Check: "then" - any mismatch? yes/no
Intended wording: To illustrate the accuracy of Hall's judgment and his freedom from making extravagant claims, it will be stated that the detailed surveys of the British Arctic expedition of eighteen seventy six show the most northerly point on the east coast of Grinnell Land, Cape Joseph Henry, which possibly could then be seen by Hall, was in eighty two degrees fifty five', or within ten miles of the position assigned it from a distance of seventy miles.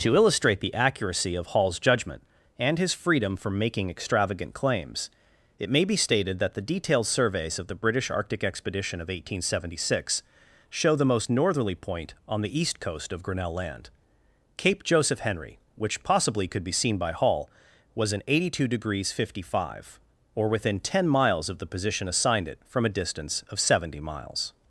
yes